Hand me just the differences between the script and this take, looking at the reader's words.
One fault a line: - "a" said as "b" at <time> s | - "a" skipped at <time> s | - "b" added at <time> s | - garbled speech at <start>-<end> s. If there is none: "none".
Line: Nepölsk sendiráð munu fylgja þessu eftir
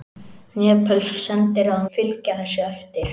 - "munu" skipped at 1.9 s